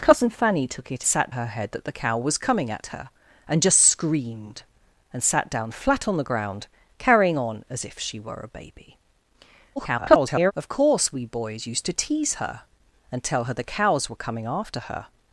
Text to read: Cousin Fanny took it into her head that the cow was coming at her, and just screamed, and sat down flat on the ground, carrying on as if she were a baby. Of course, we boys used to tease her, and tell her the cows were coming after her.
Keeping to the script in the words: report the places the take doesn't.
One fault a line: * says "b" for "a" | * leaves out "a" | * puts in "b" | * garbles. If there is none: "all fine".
* says "sat" for "into"
* garbles